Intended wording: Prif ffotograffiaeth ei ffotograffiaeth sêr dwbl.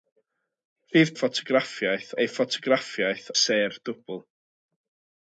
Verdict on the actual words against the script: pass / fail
pass